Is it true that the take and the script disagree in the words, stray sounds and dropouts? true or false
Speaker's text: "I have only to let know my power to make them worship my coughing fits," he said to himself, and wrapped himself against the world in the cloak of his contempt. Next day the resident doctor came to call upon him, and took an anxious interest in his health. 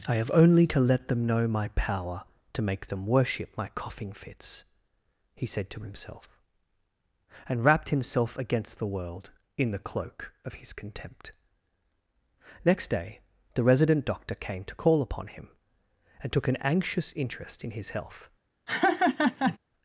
true